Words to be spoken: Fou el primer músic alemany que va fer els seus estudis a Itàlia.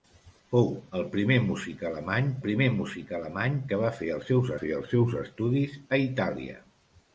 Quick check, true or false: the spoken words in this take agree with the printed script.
false